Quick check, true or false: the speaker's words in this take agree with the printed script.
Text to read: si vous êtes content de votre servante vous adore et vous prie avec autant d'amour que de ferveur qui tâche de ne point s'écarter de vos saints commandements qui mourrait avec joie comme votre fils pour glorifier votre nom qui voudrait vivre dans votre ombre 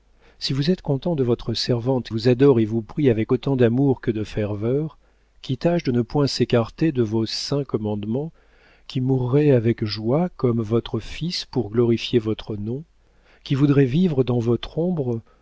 true